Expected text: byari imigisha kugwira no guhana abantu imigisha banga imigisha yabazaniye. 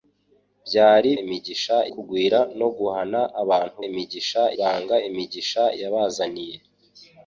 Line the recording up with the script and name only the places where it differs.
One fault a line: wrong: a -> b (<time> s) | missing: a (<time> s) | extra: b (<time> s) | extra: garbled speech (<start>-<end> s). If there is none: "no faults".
no faults